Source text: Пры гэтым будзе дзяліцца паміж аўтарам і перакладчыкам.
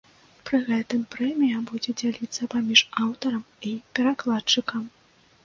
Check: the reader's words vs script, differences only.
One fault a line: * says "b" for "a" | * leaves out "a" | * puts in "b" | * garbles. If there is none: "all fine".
* puts in "прэмія"